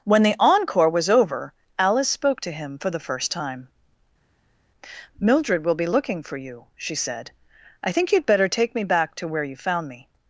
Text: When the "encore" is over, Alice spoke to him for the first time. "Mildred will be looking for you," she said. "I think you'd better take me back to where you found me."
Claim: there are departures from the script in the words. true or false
true